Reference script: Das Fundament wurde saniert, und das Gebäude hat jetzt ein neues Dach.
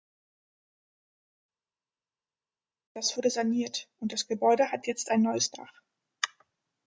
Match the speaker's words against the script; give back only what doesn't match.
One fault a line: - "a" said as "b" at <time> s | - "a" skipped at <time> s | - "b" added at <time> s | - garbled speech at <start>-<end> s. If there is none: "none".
- "Fundament" skipped at 3.1 s